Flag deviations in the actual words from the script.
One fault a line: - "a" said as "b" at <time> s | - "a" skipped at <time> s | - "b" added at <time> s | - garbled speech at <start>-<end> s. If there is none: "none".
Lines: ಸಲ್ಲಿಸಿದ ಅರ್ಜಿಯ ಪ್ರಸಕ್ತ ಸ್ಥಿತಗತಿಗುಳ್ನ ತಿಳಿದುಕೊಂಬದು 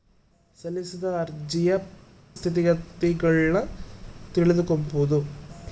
- "ಪ್ರಸಕ್ತ" skipped at 1.7 s